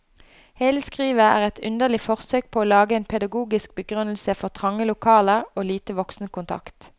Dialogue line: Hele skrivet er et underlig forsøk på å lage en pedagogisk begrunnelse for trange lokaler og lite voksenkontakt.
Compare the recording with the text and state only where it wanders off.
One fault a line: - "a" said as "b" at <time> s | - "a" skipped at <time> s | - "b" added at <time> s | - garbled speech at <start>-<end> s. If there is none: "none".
none